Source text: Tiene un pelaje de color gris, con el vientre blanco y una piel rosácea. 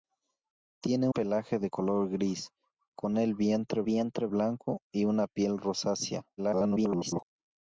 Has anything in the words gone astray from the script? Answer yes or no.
yes